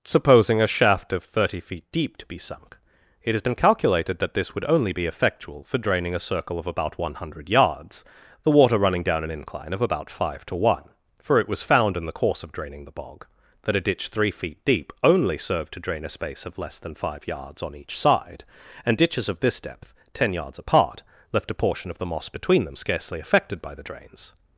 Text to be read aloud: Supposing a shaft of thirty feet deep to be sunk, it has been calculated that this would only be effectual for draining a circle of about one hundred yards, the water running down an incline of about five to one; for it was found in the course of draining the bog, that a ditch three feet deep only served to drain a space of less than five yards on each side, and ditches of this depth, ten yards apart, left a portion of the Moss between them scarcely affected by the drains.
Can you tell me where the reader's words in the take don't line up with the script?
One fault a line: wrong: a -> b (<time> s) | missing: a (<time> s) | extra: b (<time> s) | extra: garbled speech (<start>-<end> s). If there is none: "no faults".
no faults